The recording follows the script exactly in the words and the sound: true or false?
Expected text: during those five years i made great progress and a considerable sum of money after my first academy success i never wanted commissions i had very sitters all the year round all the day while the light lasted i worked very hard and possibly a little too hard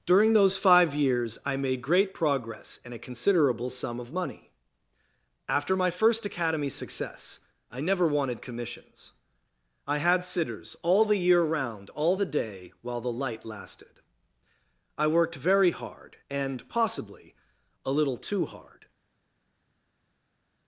false